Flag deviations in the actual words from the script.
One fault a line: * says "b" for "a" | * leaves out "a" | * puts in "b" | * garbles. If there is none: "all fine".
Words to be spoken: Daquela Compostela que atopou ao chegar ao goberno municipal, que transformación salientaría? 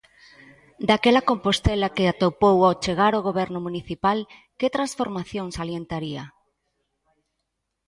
all fine